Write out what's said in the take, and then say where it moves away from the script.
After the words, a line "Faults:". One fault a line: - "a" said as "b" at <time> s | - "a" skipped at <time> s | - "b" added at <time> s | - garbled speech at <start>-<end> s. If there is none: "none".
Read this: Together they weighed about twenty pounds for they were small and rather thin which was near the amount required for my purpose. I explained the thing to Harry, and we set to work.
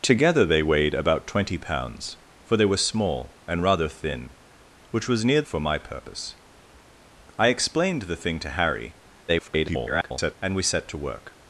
Together they weighed about twenty pounds for they were small and rather thin which was near for my purpose. I explained the thing to Harry, [garbled] and we set to work.
Faults:
- "the amount required" skipped at 5.4 s
- garbled speech at 9.3-10.3 s